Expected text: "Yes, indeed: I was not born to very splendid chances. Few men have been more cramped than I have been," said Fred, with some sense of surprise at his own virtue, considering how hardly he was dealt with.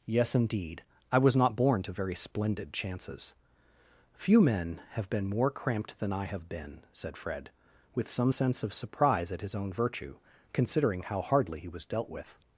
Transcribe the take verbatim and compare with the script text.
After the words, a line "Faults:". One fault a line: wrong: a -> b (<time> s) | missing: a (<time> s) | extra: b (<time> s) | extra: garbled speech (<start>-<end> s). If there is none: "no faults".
"Yes, indeed: I was not born to very splendid chances. Few men have been more cramped than I have been," said Fred, with some sense of surprise at his own virtue, considering how hardly he was dealt with.
Faults:
no faults